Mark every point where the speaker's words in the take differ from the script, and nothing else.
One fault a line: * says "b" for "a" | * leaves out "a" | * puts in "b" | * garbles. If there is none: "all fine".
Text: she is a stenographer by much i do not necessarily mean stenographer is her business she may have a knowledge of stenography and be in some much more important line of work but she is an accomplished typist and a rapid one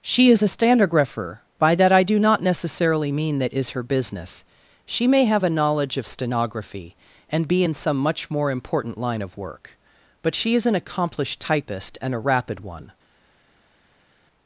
* says "that" for "much"
* says "that" for "stenographer"